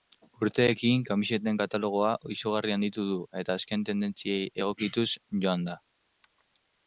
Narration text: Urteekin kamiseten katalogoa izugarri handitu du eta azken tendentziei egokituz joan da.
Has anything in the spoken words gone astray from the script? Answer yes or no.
no